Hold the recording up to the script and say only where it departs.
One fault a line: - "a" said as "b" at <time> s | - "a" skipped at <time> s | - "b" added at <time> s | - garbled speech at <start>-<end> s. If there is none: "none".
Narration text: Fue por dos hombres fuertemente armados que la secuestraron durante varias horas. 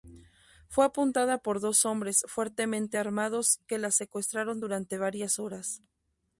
- "apuntada" added at 0.8 s